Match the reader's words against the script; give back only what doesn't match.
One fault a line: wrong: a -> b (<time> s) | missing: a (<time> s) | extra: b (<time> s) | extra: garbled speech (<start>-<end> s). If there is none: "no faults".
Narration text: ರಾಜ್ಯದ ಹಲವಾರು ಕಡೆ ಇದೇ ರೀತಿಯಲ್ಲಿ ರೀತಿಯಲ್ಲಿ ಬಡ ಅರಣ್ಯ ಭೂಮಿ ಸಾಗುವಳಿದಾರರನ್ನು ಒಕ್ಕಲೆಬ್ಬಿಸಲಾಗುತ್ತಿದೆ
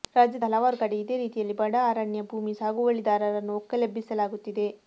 missing: ರೀತಿಯಲ್ಲಿ (1.5 s)